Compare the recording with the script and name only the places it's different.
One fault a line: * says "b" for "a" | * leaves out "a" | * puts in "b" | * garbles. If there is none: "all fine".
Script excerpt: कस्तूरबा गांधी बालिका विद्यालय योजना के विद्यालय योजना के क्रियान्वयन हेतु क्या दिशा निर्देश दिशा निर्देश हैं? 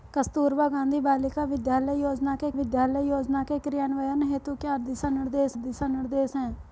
all fine